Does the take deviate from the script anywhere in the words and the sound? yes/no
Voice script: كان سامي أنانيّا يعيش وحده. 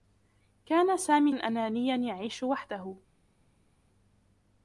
no